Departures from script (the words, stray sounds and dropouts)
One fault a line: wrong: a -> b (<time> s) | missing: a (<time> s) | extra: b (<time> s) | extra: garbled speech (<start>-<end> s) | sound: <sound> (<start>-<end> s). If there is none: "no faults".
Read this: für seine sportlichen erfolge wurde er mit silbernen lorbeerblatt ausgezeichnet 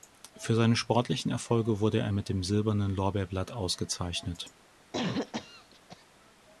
extra: dem (2.3 s)
sound: cough (4.9-6.0 s)